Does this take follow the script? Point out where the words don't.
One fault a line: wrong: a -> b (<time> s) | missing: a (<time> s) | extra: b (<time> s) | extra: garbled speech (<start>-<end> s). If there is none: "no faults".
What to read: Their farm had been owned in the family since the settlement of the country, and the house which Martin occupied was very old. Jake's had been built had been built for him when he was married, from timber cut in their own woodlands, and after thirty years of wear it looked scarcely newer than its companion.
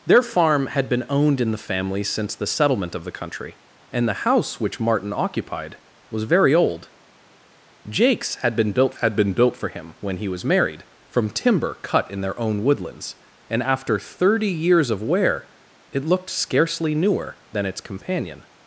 no faults